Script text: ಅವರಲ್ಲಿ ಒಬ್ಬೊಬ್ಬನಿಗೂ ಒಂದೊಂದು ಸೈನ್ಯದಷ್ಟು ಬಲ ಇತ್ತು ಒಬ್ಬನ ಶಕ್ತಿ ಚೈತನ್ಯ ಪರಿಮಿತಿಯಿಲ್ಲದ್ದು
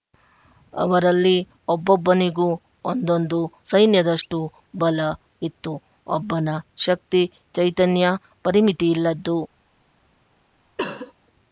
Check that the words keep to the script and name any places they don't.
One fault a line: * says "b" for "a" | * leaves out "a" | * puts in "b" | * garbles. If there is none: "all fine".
all fine